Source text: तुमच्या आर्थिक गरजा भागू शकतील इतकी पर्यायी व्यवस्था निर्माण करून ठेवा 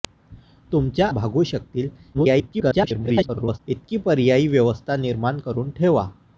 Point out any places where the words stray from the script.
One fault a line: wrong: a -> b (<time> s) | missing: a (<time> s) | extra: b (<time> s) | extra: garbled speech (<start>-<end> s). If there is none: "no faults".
missing: आर्थिक गरजा (1.1 s)
extra: garbled speech (2.1-3.6 s)